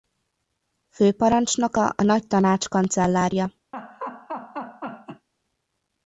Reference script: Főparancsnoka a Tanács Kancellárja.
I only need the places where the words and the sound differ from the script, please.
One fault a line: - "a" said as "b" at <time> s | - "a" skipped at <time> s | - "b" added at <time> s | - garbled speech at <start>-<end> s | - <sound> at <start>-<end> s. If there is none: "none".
- "Nagy" added at 2.0 s
- laugh at 3.7-5.3 s